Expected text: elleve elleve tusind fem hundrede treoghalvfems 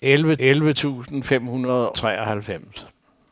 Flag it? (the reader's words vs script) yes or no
no